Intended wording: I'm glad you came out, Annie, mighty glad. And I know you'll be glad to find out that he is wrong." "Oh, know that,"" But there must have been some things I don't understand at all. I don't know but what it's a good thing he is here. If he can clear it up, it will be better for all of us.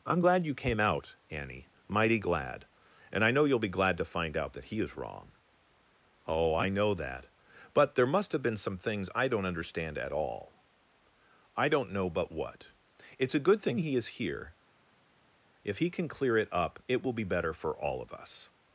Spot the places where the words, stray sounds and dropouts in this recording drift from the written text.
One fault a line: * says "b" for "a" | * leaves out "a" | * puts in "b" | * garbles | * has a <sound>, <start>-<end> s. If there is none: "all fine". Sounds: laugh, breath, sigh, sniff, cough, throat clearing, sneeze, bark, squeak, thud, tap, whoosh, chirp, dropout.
* puts in "I"